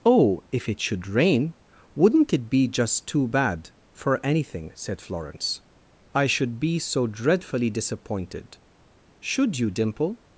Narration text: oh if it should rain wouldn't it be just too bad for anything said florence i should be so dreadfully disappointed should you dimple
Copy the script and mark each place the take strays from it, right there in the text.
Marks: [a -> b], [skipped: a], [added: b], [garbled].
oh if it should rain wouldn't it be just too bad for anything said florence i should be so dreadfully disappointed should you dimple